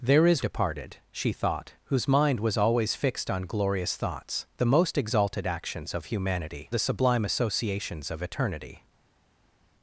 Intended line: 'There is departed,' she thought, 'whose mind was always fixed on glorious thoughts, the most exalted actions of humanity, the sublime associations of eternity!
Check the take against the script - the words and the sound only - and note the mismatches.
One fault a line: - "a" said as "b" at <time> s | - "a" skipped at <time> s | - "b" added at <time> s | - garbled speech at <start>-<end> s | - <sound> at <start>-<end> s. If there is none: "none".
none